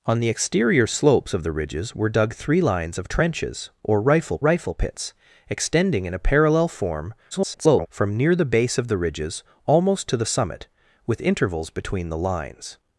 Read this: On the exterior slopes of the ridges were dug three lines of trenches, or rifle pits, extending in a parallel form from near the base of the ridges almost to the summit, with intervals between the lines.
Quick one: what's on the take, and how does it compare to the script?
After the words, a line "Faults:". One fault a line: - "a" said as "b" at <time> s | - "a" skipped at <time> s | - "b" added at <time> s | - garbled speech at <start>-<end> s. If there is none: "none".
On the exterior slopes of the ridges were dug three lines of trenches, or rifle rifle pits, extending in a parallel form [garbled] from near the base of the ridges almost to the summit, with intervals between the lines.
Faults:
- "rifle" added at 4.4 s
- garbled speech at 7.3-7.9 s